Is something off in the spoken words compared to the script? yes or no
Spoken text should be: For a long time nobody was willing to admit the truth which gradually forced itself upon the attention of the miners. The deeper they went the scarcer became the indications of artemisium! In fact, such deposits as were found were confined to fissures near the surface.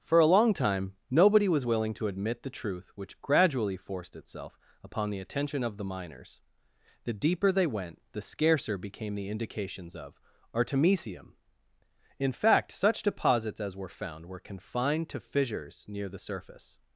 no